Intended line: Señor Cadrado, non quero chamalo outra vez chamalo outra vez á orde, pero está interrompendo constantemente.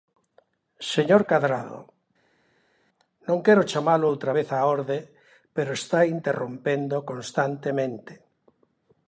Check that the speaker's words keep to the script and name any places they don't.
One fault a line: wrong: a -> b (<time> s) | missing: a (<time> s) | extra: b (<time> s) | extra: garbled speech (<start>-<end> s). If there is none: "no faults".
missing: chamalo outra vez (4.5 s)